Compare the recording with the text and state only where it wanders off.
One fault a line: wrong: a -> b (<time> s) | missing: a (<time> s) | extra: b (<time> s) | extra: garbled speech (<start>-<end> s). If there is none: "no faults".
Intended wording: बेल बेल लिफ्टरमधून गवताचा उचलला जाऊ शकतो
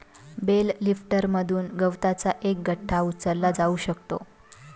missing: बेल (0.7 s)
extra: एक गठ्ठा (2.4 s)